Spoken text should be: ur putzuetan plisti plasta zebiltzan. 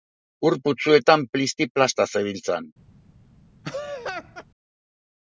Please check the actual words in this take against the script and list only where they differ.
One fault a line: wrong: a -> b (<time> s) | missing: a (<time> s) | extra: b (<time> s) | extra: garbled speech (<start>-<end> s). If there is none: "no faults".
no faults